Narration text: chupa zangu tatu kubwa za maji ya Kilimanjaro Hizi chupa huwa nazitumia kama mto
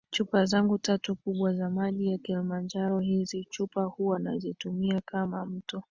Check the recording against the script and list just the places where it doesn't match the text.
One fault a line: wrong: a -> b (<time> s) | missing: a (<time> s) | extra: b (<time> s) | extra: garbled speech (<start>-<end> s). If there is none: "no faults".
no faults